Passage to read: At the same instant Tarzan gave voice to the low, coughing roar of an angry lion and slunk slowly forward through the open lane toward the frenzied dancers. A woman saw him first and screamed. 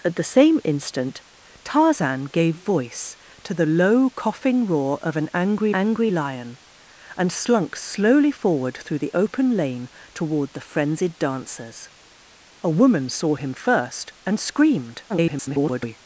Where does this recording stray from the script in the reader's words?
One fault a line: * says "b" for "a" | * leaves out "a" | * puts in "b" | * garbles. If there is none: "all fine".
* puts in "angry"
* garbles